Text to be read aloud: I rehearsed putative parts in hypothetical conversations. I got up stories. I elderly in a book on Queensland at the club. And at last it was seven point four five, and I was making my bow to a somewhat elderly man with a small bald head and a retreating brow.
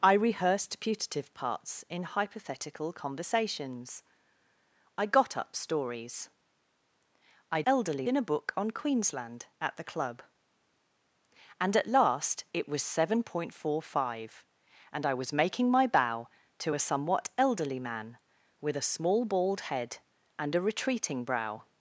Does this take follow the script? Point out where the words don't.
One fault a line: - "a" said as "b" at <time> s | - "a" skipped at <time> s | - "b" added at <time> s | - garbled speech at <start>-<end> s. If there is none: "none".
none